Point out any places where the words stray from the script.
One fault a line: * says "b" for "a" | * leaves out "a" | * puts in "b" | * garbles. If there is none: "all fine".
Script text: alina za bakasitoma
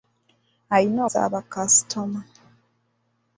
all fine